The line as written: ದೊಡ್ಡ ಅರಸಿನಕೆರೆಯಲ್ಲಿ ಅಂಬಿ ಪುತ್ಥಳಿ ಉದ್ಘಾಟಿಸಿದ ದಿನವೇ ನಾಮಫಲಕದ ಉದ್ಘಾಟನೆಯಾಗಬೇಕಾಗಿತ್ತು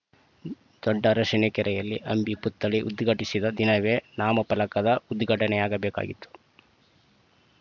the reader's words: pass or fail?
pass